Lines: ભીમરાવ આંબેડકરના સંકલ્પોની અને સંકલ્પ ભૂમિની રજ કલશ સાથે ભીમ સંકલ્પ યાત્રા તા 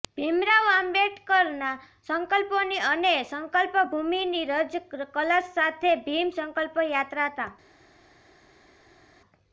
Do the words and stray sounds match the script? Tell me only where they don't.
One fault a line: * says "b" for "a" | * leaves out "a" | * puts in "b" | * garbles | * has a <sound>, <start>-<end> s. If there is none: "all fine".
all fine